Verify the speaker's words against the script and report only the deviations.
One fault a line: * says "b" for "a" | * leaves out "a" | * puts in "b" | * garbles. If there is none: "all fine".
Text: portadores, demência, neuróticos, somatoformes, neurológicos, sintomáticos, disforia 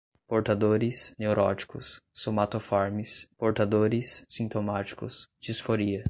* leaves out "demência"
* says "portadores" for "neurológicos"